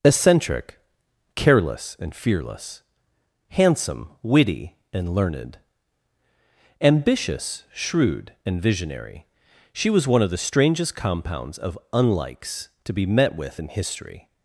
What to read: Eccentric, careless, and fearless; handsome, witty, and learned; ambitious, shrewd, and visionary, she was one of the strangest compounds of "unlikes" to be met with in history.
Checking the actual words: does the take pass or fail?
pass